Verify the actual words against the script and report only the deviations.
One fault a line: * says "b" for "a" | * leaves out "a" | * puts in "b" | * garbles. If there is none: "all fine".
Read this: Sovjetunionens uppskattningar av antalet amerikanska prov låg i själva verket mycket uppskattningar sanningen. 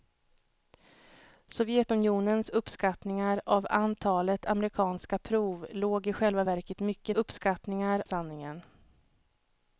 all fine